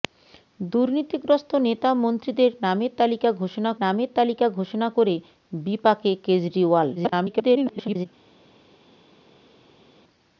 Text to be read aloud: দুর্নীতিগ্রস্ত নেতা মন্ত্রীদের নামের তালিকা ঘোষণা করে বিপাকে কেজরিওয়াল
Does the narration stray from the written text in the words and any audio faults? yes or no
yes